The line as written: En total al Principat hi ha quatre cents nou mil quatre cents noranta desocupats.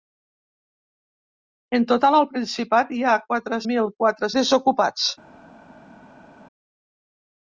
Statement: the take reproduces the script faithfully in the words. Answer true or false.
false